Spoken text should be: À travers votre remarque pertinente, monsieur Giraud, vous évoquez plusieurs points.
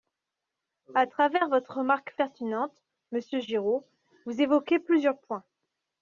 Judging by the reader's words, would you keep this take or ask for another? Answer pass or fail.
pass